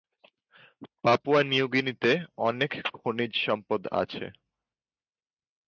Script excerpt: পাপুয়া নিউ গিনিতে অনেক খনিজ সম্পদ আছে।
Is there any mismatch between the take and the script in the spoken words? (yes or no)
no